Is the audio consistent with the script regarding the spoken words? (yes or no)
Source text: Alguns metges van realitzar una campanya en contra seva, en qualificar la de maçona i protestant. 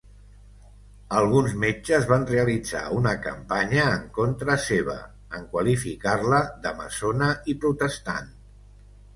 yes